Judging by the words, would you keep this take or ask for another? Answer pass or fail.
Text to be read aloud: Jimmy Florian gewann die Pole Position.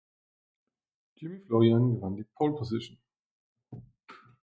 pass